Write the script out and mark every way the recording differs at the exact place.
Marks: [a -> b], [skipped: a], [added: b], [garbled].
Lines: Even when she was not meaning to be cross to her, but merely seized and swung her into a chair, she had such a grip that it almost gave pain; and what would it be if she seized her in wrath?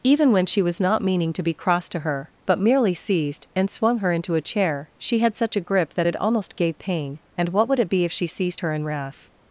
Even when she was not meaning to be cross to her, but merely seized and swung her into a chair, she had such a grip that it almost gave pain; and what would it be if she seized her in wrath?